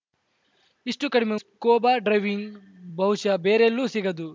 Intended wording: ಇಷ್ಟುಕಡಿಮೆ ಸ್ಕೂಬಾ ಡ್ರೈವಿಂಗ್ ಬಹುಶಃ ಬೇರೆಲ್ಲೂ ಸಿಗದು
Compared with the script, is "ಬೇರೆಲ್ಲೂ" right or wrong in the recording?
right